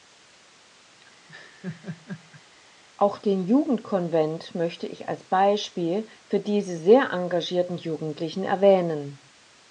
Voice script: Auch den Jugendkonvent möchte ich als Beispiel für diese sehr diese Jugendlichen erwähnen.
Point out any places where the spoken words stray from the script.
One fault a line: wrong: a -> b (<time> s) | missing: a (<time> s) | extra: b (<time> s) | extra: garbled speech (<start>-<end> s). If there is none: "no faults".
wrong: diese -> engagierten (7.1 s)